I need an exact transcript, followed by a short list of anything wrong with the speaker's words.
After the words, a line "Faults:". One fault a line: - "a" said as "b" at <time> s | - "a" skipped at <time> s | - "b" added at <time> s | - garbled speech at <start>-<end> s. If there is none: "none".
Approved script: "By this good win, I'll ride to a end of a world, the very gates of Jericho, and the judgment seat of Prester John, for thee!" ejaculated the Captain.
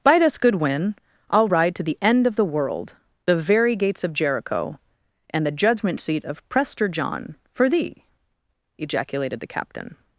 "By this good win, I'll ride to the end of the world, the very gates of Jericho, and the judgment seat of Prester John, for thee!" ejaculated the Captain.
Faults:
- "a" said as "the" at 1.8 s
- "a" said as "the" at 2.4 s